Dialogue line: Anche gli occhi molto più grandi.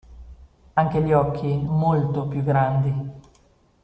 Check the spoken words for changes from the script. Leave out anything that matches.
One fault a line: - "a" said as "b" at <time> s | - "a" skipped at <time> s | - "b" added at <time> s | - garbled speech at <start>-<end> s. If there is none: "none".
none